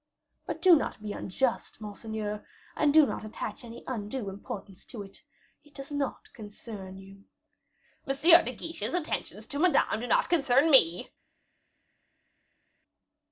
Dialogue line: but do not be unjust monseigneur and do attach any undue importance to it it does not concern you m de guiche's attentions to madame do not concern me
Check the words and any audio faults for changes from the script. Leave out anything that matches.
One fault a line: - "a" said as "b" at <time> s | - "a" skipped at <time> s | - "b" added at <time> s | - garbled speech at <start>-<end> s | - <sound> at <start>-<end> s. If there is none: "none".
- "not" added at 3.0 s